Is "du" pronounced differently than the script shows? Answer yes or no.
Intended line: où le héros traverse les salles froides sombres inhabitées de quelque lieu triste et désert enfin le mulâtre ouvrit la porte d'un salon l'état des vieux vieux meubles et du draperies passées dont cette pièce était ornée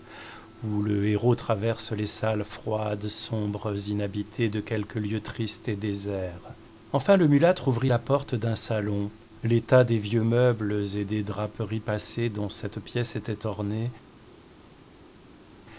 yes